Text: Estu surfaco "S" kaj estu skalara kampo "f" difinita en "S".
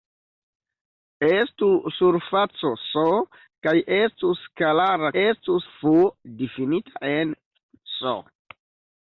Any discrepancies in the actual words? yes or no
yes